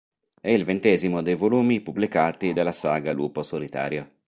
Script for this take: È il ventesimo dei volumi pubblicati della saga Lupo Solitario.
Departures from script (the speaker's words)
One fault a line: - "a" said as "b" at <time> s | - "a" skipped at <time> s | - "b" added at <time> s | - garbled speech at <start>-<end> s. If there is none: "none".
none